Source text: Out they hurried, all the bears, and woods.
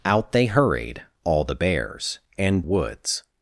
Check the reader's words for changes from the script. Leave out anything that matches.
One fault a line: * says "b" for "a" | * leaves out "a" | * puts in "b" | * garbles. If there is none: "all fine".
all fine